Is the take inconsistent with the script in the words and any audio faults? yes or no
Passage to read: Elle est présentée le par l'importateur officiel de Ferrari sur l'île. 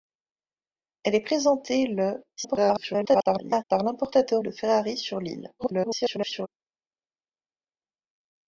yes